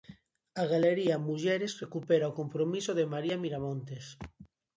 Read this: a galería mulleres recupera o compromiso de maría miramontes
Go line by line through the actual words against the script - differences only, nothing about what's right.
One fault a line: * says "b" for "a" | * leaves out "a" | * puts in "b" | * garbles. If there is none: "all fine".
all fine